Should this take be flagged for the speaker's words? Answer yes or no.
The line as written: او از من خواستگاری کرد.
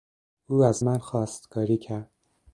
no